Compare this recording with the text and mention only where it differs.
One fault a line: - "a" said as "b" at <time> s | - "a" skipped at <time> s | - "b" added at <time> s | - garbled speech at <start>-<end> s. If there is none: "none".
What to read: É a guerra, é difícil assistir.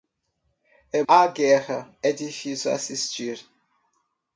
none